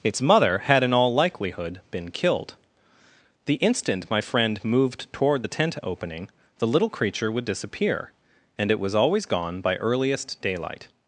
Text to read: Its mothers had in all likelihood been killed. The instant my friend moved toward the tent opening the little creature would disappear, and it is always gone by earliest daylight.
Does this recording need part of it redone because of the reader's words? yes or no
yes